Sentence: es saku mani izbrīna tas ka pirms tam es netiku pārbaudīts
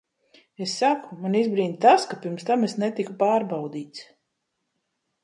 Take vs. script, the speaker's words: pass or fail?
pass